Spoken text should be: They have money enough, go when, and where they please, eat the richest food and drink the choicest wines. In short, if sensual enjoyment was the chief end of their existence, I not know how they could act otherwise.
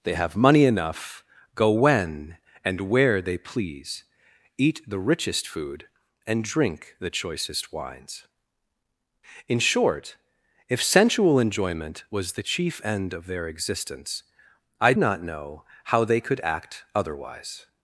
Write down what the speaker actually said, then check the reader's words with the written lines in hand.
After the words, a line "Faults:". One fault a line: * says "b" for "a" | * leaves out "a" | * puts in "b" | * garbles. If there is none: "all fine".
They have money enough, go when, and where they please, eat the richest food and drink the choicest wines. In short, if sensual enjoyment was the chief end of their existence, I not know how they could act otherwise.
Faults:
all fine